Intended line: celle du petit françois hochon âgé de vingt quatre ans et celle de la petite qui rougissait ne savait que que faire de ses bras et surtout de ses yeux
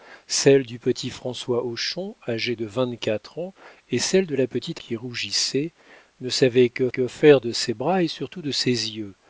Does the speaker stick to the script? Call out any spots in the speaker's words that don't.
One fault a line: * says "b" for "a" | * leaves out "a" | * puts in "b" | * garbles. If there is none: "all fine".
all fine